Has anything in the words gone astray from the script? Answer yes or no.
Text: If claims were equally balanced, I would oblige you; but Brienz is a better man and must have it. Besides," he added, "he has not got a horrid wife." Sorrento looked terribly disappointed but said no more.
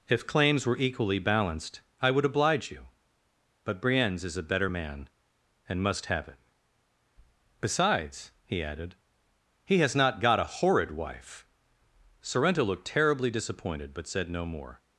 no